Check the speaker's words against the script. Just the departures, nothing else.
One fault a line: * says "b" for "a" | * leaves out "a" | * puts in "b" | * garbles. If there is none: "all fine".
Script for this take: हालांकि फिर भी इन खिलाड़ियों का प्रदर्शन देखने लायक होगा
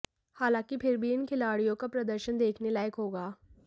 all fine